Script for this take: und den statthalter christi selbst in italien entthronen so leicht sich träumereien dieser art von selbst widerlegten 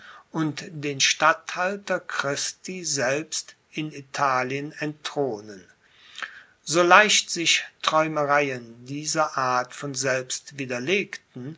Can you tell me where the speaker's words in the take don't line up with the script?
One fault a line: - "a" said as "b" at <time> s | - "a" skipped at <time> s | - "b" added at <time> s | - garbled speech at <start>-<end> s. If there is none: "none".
none